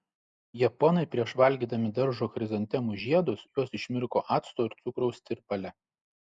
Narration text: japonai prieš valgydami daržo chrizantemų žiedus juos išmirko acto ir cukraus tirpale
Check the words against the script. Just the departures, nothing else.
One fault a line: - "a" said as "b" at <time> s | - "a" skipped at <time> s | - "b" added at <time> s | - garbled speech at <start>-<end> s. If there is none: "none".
none